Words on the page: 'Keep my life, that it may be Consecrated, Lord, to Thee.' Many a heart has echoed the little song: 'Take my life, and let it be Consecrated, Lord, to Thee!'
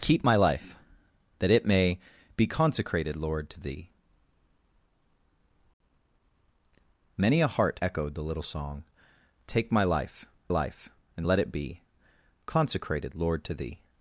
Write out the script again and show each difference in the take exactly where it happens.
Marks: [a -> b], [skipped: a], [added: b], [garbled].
'Keep my life, that it may be Consecrated, Lord, to Thee.' Many a heart [skipped: has] echoed the little song: 'Take my life, [added: life] and let it be Consecrated, Lord, to Thee!'